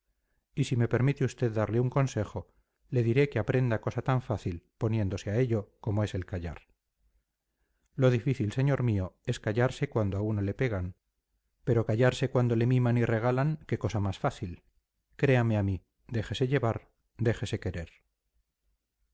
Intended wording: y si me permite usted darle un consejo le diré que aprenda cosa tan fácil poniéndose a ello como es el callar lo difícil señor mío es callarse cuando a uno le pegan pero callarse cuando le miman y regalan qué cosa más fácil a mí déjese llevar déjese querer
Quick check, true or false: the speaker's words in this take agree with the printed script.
false